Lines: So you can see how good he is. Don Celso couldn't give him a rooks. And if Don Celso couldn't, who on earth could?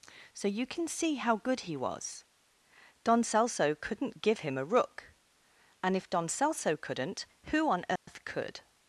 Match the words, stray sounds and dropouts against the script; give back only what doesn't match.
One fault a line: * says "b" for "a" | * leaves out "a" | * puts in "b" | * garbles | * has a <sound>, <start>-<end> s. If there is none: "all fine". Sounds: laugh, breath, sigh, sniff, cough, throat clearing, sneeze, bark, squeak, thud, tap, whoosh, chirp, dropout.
* says "was" for "is"
* says "rook" for "rooks"
* has a dropout, 8.0-8.1 s